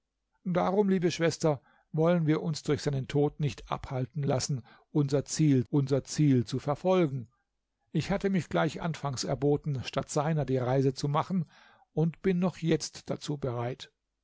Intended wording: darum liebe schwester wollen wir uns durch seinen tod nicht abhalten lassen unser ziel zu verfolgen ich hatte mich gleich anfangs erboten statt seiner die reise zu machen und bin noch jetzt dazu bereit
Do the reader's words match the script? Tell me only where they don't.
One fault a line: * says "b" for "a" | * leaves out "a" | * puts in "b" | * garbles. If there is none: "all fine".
* puts in "unser ziel"